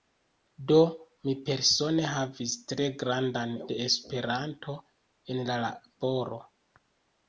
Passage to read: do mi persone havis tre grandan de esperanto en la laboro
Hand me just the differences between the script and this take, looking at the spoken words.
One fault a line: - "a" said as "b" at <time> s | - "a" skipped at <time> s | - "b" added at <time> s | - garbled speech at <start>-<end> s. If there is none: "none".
none